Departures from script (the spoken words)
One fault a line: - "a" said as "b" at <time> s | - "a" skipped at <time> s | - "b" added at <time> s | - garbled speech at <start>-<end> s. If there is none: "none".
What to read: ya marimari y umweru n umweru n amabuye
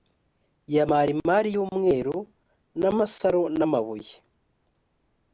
- "umweru" said as "amasaro" at 2.9 s